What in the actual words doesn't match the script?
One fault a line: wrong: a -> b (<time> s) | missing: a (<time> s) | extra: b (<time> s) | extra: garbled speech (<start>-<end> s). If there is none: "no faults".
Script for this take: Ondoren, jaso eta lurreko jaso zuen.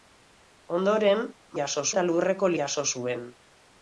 no faults